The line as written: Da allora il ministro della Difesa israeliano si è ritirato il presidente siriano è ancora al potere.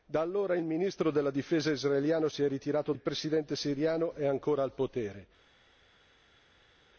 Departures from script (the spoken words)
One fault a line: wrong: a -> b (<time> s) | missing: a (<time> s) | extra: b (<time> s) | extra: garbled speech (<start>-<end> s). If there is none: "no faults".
no faults